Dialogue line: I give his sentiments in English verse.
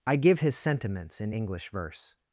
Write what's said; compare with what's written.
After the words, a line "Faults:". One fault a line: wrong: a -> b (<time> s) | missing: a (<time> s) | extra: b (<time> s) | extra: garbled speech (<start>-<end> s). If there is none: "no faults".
I give his sentiments in English verse.
Faults:
no faults